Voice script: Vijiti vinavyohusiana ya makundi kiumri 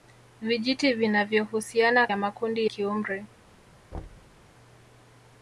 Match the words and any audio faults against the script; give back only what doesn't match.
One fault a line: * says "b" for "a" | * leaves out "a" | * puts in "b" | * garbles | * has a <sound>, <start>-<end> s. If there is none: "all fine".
* has a thud, 3.9-4.4 s